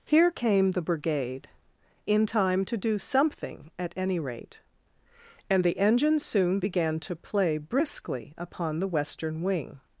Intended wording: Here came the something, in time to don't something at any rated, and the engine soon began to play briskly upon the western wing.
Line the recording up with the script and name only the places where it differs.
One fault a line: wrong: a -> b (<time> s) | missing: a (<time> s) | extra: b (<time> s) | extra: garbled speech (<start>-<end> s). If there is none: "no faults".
wrong: something -> brigade (0.8 s)
wrong: don't -> do (2.8 s)
wrong: rated -> rate (4.2 s)